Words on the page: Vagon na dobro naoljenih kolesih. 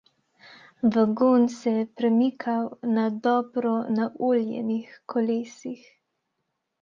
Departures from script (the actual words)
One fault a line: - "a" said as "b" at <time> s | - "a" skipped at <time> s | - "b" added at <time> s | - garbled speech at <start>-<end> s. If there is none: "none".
- "se je premikal" added at 1.6 s